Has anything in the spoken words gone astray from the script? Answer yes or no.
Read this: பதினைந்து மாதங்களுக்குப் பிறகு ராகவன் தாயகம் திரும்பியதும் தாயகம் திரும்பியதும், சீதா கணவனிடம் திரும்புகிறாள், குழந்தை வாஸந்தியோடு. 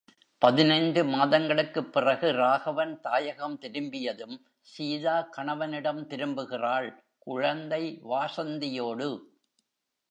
yes